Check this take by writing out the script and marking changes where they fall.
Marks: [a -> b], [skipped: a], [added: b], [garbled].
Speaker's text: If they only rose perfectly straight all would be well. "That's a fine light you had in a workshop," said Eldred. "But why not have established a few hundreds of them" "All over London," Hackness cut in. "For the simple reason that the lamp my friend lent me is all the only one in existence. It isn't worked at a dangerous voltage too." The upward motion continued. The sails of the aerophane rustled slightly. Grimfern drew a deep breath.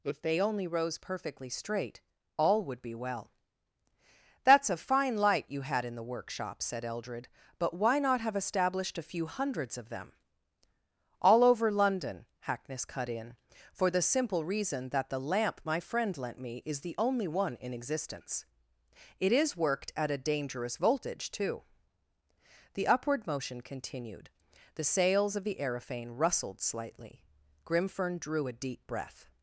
If they only rose perfectly straight all would be well. "That's a fine light you had in [a -> the] workshop," said Eldred. "But why not have established a few hundreds of them" "All over London," Hackness cut in. "For the simple reason that the lamp my friend lent me is [skipped: all] the only one in existence. It [isn't -> is] worked at a dangerous voltage too." The upward motion continued. The sails of the aerophane rustled slightly. Grimfern drew a deep breath.